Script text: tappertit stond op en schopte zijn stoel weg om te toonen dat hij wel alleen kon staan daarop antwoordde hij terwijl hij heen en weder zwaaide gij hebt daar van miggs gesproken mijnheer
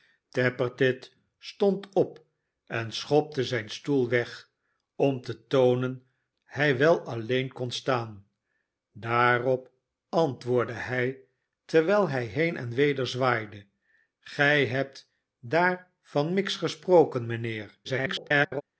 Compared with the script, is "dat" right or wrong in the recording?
wrong